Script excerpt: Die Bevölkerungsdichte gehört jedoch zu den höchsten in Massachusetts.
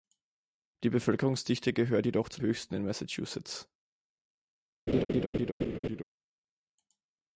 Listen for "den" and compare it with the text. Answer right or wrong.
wrong